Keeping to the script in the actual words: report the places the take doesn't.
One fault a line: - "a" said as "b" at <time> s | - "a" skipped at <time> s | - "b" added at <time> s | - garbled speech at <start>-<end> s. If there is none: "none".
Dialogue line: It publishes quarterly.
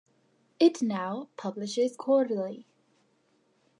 - "now" added at 0.8 s